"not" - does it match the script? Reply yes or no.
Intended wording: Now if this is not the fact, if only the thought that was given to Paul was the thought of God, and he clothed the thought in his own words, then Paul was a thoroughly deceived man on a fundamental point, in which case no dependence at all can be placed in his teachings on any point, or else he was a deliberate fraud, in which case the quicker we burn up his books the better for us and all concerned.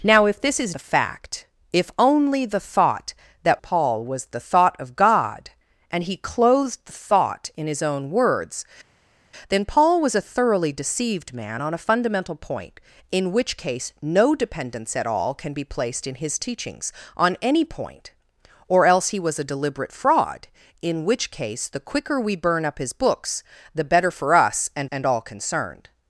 no